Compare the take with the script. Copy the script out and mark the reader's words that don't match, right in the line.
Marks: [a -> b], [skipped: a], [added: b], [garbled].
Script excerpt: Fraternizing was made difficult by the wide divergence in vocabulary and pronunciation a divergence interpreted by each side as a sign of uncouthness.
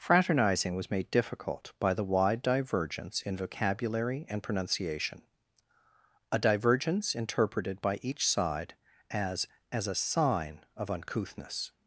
Fraternizing was made difficult by the wide divergence in vocabulary and pronunciation a divergence interpreted by each side as [added: as] a sign of uncouthness.